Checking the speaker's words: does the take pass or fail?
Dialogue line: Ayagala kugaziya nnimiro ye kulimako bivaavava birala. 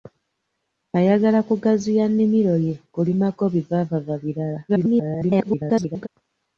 fail